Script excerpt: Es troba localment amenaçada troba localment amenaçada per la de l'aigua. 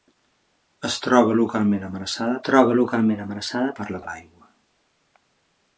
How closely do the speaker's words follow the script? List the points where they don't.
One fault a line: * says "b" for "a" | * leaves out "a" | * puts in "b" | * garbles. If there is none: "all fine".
all fine